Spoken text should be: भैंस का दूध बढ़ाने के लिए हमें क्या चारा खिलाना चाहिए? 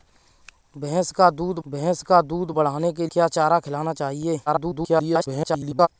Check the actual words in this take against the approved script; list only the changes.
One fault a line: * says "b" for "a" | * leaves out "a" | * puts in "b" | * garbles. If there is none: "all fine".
* puts in "भैंस का दूध"
* leaves out "लिए हमें"
* garbles